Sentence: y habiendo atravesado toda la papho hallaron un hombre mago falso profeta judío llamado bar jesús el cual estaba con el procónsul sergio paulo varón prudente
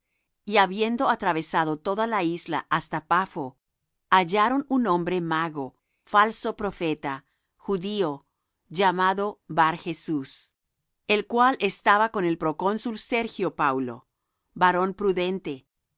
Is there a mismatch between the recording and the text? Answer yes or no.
yes